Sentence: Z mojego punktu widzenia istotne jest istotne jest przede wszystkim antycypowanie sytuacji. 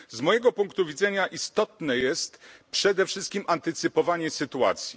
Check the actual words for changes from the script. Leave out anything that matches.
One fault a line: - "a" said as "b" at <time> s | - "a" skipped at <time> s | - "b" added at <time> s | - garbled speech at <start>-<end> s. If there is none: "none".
- "istotne jest" skipped at 2.4 s